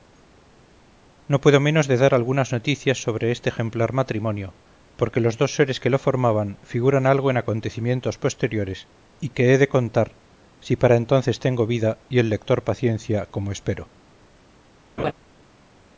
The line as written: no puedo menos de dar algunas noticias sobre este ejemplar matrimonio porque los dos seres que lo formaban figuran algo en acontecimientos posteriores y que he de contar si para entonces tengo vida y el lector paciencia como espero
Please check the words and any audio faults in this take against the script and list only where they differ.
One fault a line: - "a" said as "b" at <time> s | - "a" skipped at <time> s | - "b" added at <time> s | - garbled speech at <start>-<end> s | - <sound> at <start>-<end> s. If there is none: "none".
- laugh at 15.0-15.1 s